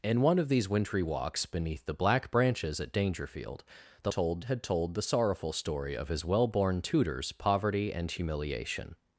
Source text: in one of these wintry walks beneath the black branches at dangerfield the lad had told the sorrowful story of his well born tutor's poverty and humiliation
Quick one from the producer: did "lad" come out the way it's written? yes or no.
no